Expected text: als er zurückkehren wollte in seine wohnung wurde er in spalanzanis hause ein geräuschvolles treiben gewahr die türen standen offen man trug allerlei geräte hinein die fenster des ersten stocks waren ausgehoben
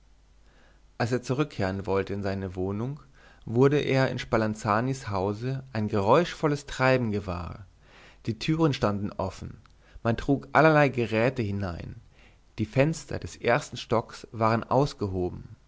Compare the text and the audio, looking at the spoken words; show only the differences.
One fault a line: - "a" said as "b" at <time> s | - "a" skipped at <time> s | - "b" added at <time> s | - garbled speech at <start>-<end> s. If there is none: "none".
none